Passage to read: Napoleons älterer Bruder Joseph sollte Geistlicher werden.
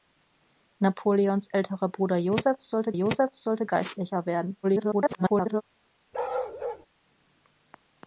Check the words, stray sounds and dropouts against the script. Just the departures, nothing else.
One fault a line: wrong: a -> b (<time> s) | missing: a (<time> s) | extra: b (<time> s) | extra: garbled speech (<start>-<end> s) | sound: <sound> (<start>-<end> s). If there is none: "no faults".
extra: Joseph sollte (2.9 s)
extra: garbled speech (4.6-5.6 s)
sound: bark (6.1-6.9 s)